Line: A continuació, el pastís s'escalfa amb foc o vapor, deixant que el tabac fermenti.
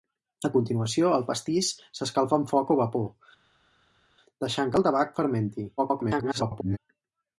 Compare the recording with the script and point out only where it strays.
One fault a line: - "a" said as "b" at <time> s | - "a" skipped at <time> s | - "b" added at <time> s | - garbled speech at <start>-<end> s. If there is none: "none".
- garbled speech at 5.8-6.8 s